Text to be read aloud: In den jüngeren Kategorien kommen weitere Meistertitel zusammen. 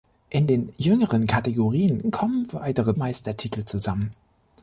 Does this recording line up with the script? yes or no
yes